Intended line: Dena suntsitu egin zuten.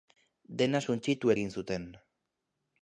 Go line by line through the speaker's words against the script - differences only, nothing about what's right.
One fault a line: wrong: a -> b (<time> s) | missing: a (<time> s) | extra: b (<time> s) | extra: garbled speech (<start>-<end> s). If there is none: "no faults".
no faults